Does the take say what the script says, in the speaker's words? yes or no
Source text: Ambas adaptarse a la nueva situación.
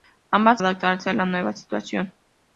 yes